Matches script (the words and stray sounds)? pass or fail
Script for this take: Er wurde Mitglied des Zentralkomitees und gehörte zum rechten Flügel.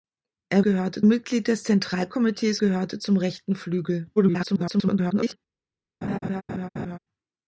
fail